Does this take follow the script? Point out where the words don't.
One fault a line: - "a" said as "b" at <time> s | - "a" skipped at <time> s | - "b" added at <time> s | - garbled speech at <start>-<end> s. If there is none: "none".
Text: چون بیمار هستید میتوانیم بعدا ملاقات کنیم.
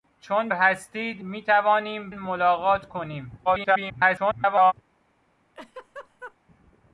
- "بیمار" skipped at 0.5 s
- "بعدا" skipped at 2.1 s
- garbled speech at 3.5-4.7 s